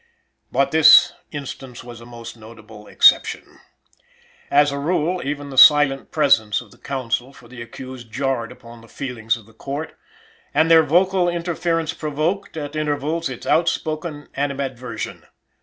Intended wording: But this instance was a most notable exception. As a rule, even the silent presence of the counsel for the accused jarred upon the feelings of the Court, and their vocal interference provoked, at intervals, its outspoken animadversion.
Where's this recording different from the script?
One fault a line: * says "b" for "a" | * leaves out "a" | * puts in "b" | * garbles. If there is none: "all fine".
all fine